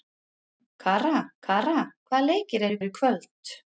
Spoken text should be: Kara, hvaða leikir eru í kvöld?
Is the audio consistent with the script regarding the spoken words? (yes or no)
no